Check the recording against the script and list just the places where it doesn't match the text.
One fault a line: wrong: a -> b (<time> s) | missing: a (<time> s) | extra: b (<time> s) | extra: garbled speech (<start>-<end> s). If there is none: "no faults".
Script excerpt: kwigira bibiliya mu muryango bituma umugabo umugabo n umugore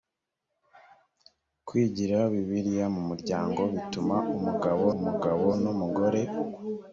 no faults